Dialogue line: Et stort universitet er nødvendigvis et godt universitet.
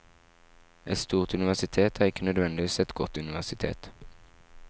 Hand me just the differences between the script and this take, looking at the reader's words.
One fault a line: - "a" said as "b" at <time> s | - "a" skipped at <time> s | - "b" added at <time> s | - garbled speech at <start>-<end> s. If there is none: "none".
- "ikke" added at 2.0 s